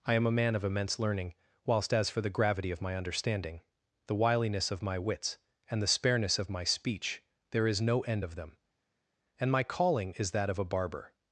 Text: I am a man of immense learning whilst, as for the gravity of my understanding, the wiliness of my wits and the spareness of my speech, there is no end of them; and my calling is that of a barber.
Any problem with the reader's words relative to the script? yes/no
no